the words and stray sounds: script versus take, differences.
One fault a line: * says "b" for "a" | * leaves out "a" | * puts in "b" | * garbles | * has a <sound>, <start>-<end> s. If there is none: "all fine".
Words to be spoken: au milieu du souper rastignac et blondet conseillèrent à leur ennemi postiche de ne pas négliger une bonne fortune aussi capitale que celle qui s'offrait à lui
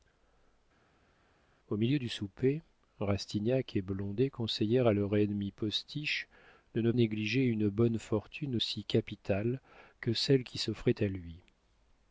* leaves out "pas"